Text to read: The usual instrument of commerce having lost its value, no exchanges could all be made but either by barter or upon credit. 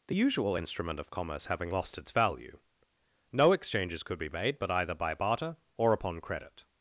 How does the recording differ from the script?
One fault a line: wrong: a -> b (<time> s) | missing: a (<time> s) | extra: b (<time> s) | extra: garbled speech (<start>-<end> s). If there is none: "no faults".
missing: all (4.2 s)